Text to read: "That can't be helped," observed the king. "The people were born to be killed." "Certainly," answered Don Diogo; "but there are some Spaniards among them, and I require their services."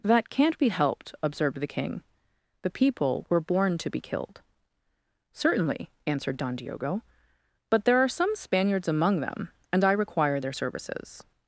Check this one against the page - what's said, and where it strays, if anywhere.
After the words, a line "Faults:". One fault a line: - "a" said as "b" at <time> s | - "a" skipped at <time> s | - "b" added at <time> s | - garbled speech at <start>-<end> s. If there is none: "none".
"That can't be helped," observed the king. "The people were born to be killed." "Certainly," answered Don Diogo; "but there are some Spaniards among them, and I require their services."
Faults:
none